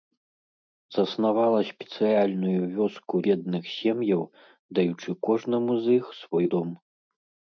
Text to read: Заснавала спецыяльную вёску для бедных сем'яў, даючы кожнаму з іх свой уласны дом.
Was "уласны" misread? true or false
true